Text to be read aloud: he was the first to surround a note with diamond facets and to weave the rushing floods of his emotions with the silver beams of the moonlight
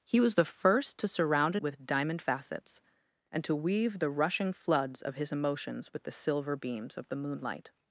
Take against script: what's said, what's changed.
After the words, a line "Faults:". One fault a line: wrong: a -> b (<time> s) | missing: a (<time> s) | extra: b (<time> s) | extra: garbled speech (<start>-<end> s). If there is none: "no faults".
he was the first to surround a with diamond facets and to weave the rushing floods of his emotions with the silver beams of the moonlight
Faults:
missing: note (1.6 s)